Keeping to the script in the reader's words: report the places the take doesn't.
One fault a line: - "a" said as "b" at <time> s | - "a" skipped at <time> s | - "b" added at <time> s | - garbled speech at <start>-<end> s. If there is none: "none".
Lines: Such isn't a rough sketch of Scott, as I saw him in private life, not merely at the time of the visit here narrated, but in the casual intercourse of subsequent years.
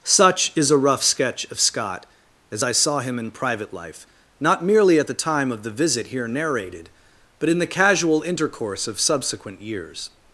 - "isn't" said as "is" at 0.6 s